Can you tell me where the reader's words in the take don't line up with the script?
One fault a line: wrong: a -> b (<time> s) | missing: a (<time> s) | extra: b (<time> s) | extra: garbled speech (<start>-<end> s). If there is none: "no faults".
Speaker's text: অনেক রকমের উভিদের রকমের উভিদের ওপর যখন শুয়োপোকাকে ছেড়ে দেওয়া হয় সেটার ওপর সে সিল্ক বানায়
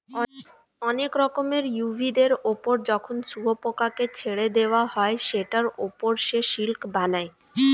missing: রকমের উভিদের (2.3 s)